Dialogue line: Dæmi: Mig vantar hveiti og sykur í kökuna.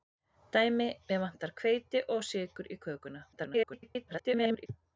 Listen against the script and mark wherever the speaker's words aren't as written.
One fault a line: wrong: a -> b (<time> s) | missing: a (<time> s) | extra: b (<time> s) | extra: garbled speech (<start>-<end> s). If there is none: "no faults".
extra: garbled speech (3.3-4.7 s)